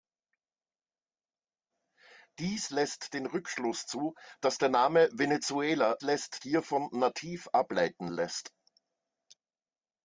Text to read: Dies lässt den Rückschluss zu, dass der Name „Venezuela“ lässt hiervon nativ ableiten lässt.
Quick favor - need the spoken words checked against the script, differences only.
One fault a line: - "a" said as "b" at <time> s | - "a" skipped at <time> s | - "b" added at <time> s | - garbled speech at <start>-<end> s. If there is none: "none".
none